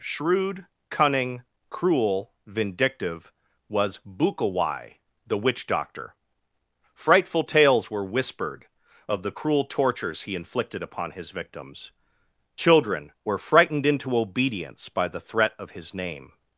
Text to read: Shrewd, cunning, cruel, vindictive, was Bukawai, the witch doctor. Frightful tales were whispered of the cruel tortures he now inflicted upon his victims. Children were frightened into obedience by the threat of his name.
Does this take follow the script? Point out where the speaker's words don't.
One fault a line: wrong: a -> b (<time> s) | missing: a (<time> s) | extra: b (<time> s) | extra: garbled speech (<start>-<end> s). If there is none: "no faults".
missing: now (10.4 s)